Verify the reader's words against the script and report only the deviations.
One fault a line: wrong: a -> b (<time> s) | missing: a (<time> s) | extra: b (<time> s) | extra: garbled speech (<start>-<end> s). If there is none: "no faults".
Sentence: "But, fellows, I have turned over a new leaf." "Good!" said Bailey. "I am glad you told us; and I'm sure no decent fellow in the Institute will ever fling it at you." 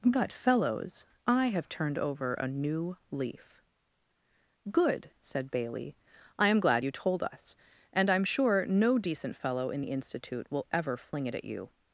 no faults